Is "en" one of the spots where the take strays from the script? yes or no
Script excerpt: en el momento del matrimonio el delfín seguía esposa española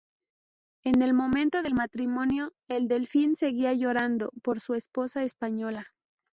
no